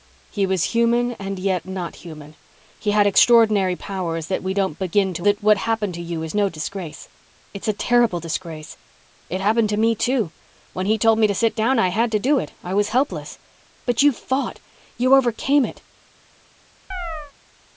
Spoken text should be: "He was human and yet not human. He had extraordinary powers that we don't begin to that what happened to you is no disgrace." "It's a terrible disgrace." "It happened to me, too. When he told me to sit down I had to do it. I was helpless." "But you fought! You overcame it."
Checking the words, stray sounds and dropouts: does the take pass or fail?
fail